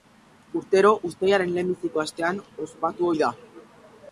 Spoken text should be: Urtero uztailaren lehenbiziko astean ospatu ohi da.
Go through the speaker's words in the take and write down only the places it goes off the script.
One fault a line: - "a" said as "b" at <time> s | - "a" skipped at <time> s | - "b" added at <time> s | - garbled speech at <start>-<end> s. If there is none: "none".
none